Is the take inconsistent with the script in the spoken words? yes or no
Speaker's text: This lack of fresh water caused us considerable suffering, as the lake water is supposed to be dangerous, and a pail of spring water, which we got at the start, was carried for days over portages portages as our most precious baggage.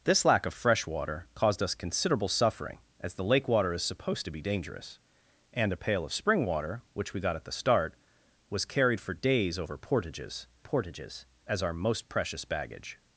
no